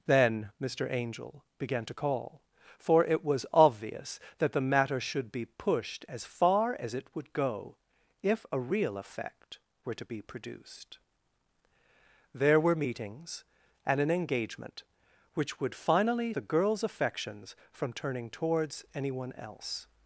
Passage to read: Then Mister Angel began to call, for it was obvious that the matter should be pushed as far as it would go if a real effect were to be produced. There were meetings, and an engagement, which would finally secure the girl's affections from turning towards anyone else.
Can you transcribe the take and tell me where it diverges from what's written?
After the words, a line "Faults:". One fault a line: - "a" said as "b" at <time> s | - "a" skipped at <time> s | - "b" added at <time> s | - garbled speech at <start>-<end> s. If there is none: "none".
Then Mister Angel began to call, for it was obvious that the matter should be pushed as far as it would go if a real effect were to be produced. There were meetings, and an engagement, which would finally the girl's affections from turning towards anyone else.
Faults:
- "secure" skipped at 16.3 s